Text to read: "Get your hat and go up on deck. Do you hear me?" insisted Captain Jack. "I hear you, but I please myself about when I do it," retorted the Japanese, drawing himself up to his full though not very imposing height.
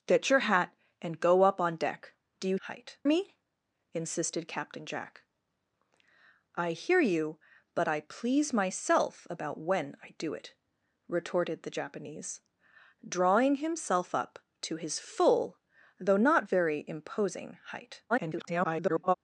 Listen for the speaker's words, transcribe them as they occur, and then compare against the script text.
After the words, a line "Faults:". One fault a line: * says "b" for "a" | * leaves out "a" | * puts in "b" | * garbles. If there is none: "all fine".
"Get your hat and go up on deck. Do you height me?" insisted Captain Jack. "I hear you, but I please myself about when I do it," retorted the Japanese, drawing himself up to his full though not very imposing height. [garbled]
Faults:
* says "height" for "hear"
* garbles